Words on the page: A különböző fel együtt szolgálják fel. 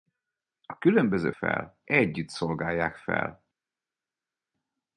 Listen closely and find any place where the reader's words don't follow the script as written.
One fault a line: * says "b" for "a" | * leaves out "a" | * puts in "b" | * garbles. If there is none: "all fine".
all fine